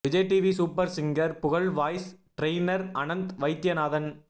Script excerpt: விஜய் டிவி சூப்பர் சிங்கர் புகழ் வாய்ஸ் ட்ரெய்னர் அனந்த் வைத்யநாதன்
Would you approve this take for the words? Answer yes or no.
yes